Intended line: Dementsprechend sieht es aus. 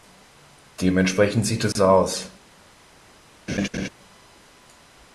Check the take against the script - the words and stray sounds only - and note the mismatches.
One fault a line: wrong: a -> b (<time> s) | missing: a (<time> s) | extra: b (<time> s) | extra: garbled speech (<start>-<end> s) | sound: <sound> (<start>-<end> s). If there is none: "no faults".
sound: dropout (1.7-1.8 s)
sound: laugh (3.5-3.9 s)